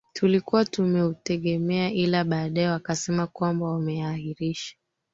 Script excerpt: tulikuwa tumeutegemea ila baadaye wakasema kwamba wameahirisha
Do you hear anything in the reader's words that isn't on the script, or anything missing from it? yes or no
no